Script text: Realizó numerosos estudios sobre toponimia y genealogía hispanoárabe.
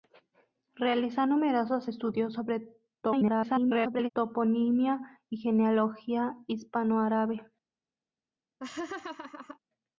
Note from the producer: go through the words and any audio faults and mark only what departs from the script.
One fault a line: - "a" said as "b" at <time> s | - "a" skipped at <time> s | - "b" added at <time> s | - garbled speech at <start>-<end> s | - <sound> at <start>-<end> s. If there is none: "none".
- garbled speech at 3.0-4.1 s
- laugh at 8.6-9.6 s